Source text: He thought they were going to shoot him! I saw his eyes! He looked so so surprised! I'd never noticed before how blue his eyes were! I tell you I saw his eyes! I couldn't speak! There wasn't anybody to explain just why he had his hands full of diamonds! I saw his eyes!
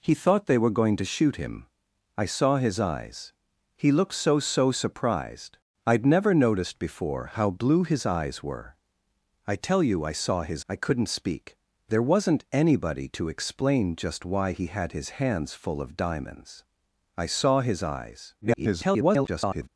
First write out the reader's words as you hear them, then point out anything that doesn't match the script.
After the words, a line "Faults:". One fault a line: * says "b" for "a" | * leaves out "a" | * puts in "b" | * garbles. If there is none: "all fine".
He thought they were going to shoot him! I saw his eyes! He looked so so surprised! I'd never noticed before how blue his eyes were! I tell you I saw his! I couldn't speak! There wasn't anybody to explain just why he had his hands full of diamonds! I saw his eyes! [garbled]
Faults:
* leaves out "eyes"
* garbles